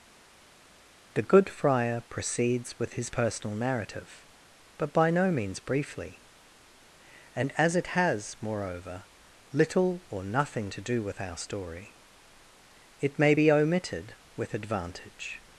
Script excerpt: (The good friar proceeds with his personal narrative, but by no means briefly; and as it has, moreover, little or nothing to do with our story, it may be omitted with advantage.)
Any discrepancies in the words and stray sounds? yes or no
no